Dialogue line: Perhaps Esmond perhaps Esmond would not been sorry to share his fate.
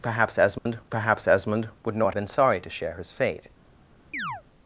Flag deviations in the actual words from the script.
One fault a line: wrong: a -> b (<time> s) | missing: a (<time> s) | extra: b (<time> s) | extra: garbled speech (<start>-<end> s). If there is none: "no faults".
no faults